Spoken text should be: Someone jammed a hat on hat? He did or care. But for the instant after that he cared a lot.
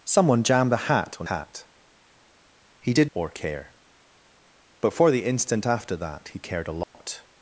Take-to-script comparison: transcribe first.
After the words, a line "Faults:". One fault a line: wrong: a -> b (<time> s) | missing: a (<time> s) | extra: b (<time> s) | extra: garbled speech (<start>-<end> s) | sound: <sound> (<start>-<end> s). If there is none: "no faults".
Someone jammed a hat on hat? He did or care. But for the instant after that he cared a lot.
Faults:
sound: dropout (6.8-6.9 s)